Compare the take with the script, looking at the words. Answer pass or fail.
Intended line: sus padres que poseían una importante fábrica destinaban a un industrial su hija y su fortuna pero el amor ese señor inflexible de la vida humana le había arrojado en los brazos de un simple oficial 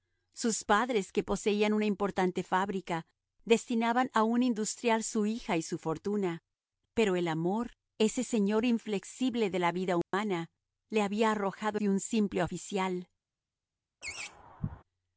fail